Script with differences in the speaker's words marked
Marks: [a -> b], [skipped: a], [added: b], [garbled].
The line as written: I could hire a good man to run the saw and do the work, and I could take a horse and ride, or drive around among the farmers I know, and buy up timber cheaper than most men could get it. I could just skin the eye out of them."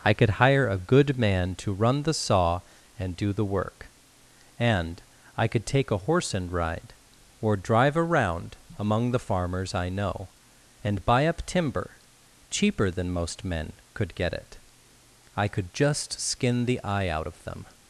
I could hire a good man to run the saw and do the work, and I could take a horse and ride, or drive around among the farmers I know, and buy up timber cheaper than most men could get it. I could just skin the eye out of them."